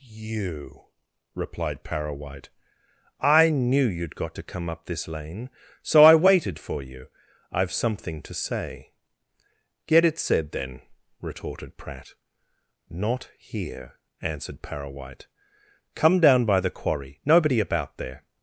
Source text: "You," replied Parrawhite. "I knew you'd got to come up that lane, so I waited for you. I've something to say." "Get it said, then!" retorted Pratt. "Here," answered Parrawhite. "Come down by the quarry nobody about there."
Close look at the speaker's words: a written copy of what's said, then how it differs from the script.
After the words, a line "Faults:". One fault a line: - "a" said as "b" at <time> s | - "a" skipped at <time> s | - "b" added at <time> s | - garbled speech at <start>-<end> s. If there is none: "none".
"You," replied Parrawhite. "I knew you'd got to come up this lane, so I waited for you. I've something to say." "Get it said, then!" retorted Pratt. "Not here," answered Parrawhite. "Come down by the quarry nobody about there."
Faults:
- "that" said as "this" at 4.8 s
- "Not" added at 12.9 s